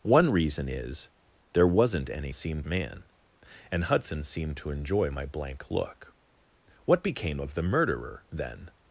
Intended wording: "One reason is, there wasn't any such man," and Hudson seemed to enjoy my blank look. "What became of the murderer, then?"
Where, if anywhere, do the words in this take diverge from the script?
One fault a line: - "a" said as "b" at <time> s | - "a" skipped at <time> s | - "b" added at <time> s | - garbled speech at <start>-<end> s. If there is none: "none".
- "such" said as "seemed" at 2.3 s